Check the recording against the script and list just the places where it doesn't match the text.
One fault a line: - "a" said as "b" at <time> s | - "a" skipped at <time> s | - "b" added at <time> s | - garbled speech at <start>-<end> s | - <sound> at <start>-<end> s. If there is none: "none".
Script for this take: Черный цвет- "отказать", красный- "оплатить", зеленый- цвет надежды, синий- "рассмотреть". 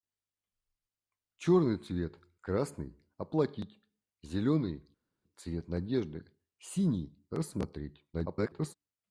- "отказать" skipped at 2.2 s
- garbled speech at 8.1-8.7 s